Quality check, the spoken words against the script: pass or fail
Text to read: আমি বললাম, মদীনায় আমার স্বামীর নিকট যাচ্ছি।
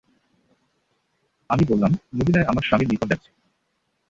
pass